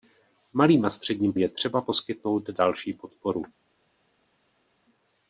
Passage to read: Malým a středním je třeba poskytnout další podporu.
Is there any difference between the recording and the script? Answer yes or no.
no